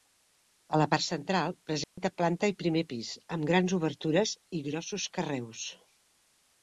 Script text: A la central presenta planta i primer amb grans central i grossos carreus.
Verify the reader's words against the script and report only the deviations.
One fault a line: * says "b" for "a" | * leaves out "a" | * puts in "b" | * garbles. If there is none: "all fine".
* puts in "part"
* puts in "pis"
* says "obertures" for "central"